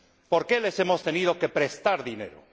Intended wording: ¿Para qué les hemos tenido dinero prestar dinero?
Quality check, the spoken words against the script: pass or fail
fail